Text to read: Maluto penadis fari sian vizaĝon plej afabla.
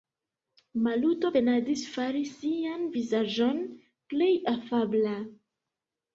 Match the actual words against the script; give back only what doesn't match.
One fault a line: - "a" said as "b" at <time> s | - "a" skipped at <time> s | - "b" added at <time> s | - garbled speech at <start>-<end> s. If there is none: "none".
none